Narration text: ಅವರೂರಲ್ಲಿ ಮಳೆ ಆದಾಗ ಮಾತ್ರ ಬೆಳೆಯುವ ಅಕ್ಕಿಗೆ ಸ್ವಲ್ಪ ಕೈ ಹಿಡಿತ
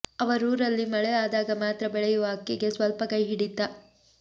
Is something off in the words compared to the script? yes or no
no